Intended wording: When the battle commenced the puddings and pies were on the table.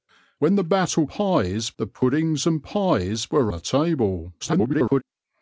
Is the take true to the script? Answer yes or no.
no